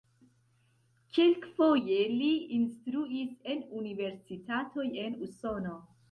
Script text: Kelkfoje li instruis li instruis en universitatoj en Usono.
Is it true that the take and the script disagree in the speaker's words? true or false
true